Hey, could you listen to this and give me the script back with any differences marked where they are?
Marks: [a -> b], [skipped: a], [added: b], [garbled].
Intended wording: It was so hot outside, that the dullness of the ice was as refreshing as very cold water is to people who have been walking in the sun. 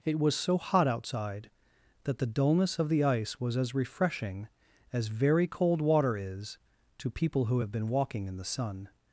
It was so hot outside, that the dullness of the ice was as refreshing as very cold water is to people who have been walking in the sun.